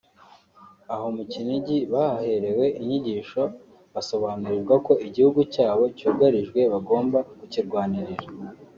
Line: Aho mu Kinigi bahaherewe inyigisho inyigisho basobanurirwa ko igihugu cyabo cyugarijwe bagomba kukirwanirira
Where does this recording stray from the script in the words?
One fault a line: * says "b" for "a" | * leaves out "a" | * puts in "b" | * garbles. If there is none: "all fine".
* leaves out "inyigisho"